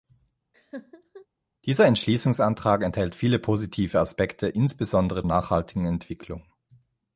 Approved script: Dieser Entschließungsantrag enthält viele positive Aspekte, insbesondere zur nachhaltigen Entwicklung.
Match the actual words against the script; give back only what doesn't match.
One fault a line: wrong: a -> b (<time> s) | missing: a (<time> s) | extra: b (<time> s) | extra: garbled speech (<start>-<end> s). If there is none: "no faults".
missing: zur (5.2 s)